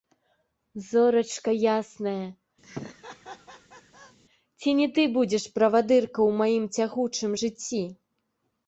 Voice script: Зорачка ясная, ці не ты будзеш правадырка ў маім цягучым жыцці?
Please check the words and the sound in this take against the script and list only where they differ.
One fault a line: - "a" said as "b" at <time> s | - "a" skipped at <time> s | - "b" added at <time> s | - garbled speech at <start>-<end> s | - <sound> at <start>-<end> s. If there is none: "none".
- laugh at 2.6-4.2 s